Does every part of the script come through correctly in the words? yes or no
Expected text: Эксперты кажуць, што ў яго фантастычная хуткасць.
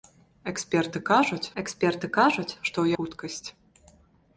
no